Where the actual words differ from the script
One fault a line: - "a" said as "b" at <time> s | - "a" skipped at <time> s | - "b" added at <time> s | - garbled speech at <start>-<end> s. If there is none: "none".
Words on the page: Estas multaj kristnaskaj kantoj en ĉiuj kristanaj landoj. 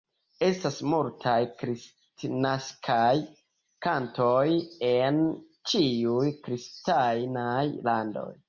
none